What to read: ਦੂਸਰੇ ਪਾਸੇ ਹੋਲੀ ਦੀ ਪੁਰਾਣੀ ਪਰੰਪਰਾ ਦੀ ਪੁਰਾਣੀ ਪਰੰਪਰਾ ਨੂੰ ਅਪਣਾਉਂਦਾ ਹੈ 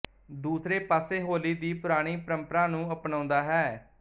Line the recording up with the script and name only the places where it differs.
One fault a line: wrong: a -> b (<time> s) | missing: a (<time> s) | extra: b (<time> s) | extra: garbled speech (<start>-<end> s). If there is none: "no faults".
missing: ਦੀ ਪੁਰਾਣੀ ਪਰੰਪਰਾ (2.6 s)